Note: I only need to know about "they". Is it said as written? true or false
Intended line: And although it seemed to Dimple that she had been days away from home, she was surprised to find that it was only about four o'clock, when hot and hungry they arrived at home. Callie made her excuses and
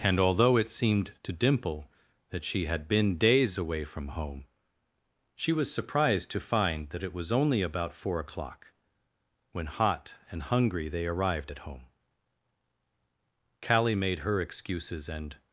true